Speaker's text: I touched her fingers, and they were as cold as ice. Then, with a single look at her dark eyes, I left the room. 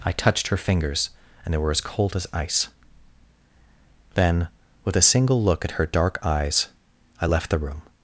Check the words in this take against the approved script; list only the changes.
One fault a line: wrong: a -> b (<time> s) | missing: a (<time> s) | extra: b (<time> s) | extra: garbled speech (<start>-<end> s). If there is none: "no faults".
no faults